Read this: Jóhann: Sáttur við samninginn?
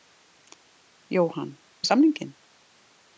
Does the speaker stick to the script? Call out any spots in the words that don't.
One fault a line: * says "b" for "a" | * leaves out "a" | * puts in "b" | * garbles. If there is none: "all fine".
* leaves out "Sáttur"